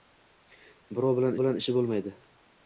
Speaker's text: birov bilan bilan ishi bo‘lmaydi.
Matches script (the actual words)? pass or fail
pass